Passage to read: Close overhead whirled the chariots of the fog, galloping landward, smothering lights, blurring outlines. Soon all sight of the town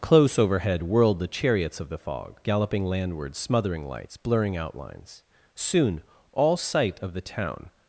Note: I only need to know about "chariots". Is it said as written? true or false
true